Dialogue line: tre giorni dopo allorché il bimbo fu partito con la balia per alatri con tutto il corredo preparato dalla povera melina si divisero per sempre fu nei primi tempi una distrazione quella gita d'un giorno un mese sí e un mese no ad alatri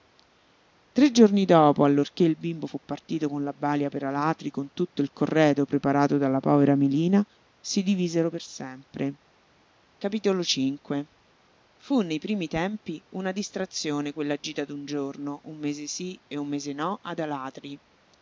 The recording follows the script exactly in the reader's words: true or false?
true